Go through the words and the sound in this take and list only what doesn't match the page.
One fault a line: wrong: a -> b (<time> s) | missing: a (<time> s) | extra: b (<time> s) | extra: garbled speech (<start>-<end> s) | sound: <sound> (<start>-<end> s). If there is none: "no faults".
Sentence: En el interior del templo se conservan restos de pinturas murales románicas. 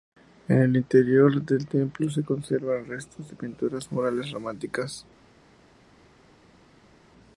no faults